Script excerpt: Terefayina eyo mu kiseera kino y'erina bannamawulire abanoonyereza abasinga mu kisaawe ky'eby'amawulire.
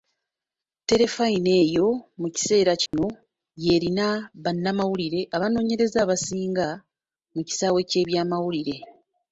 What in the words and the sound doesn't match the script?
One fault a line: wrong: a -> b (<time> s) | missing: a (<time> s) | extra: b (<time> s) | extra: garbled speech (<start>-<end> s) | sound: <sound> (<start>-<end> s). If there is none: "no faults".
sound: dropout (2.9-2.9 s)